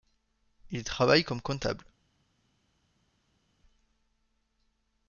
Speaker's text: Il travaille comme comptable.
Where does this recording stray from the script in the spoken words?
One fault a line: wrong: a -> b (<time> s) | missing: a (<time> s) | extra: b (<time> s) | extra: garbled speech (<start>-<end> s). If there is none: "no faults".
no faults